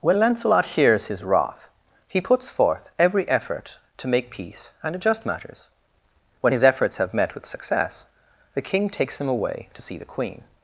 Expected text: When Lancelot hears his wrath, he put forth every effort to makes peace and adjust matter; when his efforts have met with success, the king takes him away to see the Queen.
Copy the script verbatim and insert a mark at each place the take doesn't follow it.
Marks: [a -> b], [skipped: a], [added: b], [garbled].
When Lancelot hears his wrath, he [put -> puts] forth every effort to [makes -> make] peace and adjust [matter; -> matters] when his efforts have met with success, the king takes him away to see the Queen.